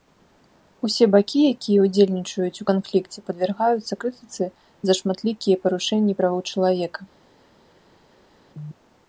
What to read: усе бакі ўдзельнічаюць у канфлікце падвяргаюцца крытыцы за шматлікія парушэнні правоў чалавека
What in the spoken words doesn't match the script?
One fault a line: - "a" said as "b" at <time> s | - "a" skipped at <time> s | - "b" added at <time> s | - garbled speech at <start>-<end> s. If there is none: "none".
- "якія" added at 1.6 s